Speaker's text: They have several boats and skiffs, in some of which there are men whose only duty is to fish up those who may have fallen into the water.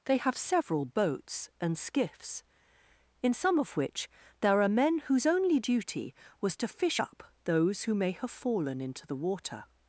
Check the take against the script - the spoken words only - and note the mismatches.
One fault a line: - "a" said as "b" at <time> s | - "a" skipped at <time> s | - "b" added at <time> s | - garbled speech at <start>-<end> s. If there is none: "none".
- "is" said as "was" at 6.4 s